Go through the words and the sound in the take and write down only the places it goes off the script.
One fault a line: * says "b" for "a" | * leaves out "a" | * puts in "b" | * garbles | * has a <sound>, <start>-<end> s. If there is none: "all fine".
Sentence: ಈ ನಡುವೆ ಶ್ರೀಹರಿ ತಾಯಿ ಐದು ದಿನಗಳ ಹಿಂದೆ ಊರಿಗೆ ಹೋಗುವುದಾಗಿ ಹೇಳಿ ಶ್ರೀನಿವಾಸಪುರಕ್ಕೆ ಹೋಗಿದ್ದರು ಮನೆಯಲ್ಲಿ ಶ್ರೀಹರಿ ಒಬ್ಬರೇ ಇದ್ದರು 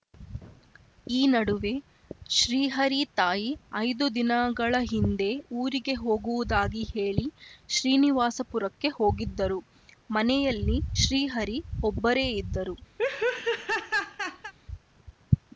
* has a laugh, 13.0-14.5 s